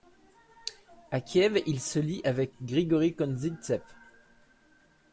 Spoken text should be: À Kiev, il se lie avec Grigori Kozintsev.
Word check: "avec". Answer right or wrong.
right